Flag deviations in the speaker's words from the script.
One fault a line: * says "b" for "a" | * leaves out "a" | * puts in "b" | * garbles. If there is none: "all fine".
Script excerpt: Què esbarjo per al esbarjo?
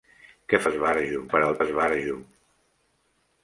all fine